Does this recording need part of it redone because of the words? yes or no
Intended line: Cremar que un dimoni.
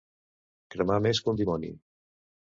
yes